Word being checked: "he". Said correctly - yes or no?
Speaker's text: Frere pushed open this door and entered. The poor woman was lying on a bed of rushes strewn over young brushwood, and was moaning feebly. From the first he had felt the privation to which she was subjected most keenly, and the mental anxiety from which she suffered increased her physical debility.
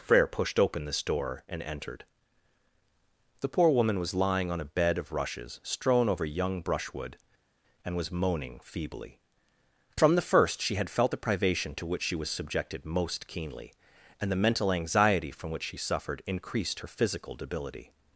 no